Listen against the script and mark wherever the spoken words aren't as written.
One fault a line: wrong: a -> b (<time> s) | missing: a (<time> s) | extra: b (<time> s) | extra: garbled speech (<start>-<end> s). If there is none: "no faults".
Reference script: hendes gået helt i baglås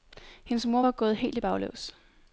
extra: mor var (0.7 s)